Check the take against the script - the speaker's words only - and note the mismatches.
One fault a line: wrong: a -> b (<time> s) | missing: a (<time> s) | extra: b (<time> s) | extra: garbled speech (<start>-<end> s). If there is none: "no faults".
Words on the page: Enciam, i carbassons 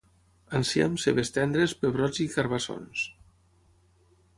extra: cebes tendres pebrots (1.0 s)